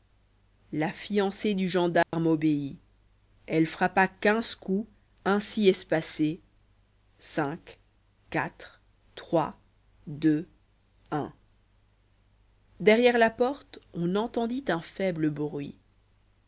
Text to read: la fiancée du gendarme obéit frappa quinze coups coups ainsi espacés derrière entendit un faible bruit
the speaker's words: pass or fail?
fail